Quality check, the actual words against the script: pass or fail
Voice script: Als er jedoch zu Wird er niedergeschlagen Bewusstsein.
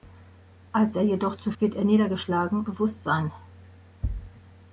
pass